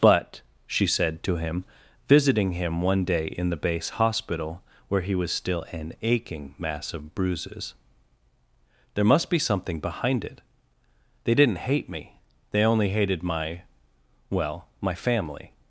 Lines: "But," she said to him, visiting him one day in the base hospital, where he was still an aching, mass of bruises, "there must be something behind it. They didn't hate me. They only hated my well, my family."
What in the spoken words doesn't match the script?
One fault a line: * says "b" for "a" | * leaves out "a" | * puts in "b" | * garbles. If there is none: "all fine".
all fine